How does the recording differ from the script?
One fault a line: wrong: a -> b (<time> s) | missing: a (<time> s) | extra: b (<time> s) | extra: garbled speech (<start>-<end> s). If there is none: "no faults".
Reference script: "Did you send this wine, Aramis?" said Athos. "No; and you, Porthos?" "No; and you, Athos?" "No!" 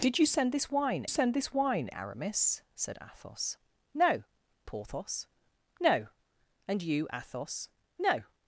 extra: send this wine (1.1 s)
missing: and you (4.2 s)